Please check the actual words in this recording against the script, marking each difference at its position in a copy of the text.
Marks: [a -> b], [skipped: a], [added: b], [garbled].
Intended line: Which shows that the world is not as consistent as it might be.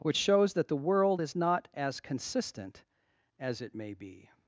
Which shows that the world is not as consistent as it [might -> may] be.